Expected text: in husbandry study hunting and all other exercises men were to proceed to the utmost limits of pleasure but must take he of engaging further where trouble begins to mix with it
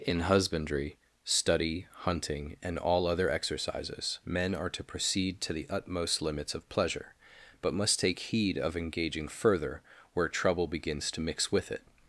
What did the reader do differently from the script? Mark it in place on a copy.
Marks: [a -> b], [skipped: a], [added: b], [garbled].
in husbandry study hunting and all other exercises men [were -> are] to proceed to the utmost limits of pleasure but must take [he -> heed] of engaging further where trouble begins to mix with it